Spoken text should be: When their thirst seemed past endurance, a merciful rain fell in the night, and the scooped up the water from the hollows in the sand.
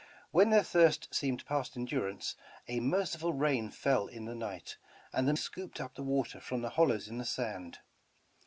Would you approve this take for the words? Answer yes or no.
yes